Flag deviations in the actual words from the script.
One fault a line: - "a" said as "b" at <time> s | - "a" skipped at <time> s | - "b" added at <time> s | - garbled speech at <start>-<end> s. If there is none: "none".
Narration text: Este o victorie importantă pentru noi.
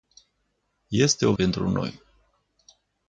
- "victorie importantă" skipped at 1.3 s